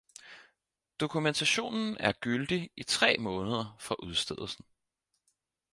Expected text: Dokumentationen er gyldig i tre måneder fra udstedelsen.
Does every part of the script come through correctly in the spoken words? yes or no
yes